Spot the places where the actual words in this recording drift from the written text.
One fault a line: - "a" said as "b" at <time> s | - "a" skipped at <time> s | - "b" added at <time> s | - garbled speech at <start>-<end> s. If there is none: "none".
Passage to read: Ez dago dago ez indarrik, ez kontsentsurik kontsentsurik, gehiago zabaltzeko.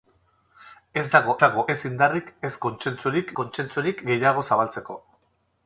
none